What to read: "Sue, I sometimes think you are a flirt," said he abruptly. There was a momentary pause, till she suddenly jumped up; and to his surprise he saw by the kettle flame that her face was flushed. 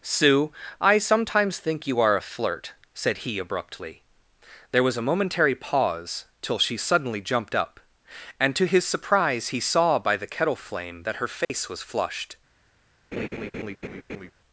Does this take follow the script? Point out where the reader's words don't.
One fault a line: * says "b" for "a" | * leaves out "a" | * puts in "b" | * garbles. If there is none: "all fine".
all fine